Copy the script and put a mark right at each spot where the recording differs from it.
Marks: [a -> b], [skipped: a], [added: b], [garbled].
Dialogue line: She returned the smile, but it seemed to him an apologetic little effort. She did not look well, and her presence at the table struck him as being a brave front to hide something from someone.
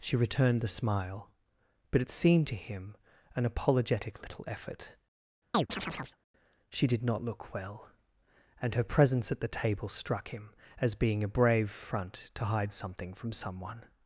She returned the smile, but it seemed to him an apologetic little effort. She did not look well, and her presence at the table struck him as being a brave front to hide something from someone.